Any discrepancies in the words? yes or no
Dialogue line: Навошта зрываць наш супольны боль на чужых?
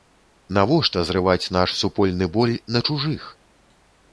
no